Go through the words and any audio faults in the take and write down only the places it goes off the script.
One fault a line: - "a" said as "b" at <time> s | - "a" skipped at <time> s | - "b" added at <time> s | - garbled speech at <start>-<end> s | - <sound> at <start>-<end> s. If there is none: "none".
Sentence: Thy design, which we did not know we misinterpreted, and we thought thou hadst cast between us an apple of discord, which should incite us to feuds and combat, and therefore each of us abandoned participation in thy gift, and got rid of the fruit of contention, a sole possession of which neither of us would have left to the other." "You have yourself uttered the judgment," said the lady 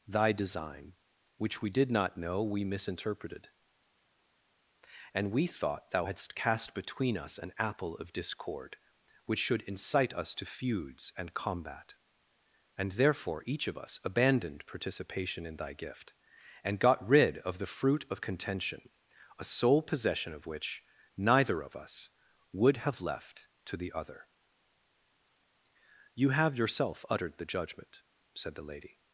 none